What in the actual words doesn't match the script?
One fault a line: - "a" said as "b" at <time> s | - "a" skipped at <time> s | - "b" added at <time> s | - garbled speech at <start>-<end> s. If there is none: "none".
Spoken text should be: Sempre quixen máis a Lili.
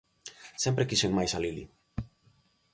none